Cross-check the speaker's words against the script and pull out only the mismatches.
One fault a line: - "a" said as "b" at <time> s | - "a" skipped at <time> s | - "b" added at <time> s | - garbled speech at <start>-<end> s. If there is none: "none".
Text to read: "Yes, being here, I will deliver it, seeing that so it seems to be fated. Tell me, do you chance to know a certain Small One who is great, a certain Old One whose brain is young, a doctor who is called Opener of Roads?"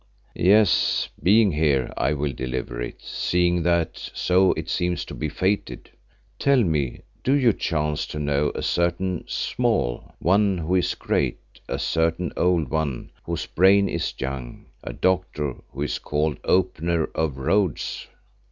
none